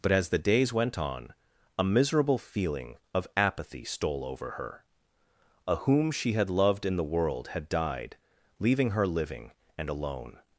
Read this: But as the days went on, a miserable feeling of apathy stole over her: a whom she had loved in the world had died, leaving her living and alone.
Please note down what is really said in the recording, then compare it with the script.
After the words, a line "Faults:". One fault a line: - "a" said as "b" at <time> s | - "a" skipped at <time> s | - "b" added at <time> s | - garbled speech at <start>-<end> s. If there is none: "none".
But as the days went on, a miserable feeling of apathy stole over her: a whom she had loved in the world had died, leaving her living and alone.
Faults:
none